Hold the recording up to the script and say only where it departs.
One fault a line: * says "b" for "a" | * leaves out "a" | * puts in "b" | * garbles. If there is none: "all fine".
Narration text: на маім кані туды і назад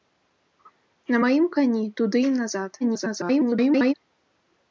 * garbles